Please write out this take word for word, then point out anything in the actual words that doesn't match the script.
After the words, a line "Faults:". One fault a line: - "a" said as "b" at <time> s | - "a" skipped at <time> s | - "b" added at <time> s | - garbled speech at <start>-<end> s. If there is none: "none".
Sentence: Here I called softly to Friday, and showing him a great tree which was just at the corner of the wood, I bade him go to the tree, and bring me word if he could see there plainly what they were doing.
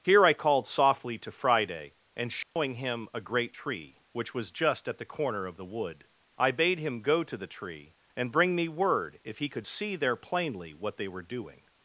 Here I called softly to Friday, and showing him a great tree which was just at the corner of the wood, I bade him go to the tree, and bring me word if he could see there plainly what they were doing.
Faults:
none